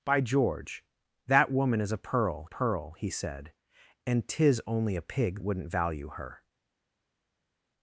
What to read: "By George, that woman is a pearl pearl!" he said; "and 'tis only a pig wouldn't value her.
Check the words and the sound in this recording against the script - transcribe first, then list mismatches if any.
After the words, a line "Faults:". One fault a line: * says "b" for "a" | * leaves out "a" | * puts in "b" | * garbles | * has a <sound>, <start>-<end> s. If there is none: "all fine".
"By George, that woman is a pearl pearl!" he said; "and 'tis only a pig wouldn't value her.
Faults:
all fine